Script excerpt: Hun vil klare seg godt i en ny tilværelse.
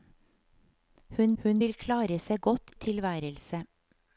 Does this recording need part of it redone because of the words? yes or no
yes